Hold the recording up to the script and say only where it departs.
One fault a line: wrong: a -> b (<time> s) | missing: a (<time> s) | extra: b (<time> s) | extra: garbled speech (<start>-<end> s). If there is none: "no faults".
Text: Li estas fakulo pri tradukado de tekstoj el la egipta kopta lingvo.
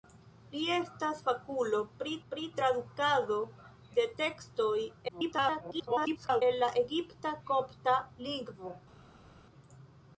extra: pri (2.3 s)
extra: garbled speech (5.1-6.4 s)